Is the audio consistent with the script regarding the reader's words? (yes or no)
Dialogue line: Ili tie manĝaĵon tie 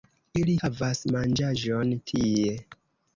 no